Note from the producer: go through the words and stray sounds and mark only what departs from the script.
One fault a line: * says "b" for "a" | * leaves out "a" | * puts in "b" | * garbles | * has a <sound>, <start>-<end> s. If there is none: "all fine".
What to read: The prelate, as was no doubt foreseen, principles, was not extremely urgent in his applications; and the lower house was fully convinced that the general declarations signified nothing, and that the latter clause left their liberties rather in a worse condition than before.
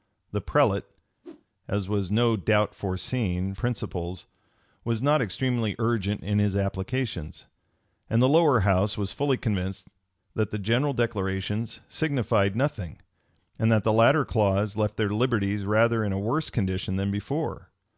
* has a whoosh, 1.2-1.4 s